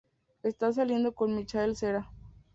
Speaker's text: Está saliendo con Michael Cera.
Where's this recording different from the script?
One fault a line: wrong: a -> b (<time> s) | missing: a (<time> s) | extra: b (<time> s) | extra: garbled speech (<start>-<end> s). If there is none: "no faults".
no faults